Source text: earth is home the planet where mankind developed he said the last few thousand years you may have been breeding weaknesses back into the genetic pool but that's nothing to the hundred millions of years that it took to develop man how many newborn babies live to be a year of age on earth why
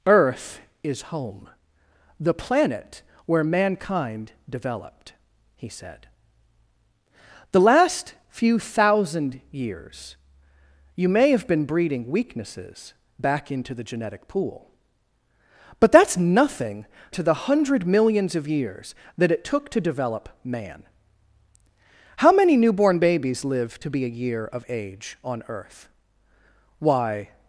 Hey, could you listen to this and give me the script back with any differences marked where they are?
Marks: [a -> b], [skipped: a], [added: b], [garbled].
earth is home the planet where mankind developed he said the last few thousand years you may have been breeding weaknesses back into the genetic pool but that's nothing to the hundred millions of years that it took to develop man how many newborn babies live to be a year of age on earth why